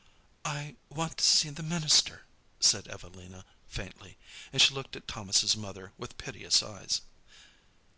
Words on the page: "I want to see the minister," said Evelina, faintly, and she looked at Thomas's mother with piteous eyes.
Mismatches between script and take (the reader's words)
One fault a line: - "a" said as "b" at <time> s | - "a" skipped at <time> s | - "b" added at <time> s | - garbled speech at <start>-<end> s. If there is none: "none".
none